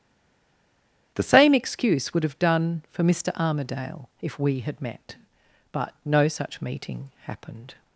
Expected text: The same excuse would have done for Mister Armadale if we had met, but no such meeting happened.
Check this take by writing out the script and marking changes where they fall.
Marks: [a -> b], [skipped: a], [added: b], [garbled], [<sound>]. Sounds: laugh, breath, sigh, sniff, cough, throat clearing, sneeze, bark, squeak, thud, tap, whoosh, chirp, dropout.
The same excuse would have done for Mister Armadale if we had met, but no such meeting happened.